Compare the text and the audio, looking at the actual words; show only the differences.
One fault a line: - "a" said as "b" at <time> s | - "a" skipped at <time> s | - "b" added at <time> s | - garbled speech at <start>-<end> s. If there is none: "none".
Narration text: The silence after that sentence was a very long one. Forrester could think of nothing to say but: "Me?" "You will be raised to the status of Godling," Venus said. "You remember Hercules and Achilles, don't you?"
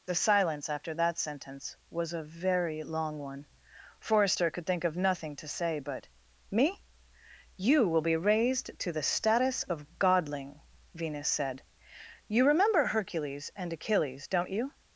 none